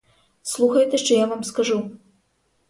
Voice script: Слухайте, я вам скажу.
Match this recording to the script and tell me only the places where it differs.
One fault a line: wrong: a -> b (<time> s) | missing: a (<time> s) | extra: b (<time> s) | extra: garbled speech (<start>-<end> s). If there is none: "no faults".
extra: що (1.0 s)